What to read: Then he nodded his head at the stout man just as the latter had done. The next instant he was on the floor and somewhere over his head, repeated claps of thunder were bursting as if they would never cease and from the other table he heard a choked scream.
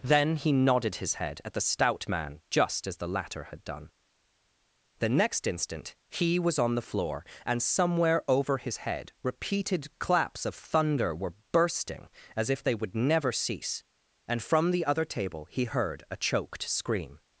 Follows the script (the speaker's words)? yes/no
yes